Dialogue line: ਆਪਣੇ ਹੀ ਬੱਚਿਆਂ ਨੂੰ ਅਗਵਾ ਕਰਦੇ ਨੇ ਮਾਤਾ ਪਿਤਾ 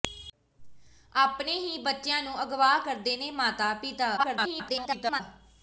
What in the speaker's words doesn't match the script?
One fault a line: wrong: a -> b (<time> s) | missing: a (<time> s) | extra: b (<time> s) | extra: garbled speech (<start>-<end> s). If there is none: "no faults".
extra: garbled speech (4.2-5.2 s)